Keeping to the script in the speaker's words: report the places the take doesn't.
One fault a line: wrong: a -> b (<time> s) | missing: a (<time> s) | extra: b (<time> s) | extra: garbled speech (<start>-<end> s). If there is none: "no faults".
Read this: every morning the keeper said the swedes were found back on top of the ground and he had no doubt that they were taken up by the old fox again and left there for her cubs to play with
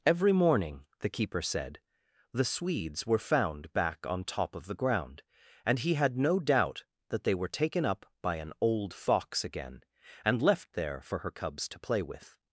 wrong: the -> an (8.4 s)